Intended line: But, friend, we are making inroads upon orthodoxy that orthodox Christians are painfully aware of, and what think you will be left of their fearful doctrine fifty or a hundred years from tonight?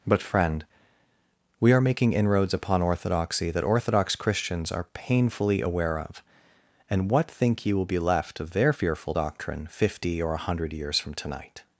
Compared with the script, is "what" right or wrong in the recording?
right